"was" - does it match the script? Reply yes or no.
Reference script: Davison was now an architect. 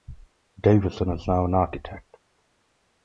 no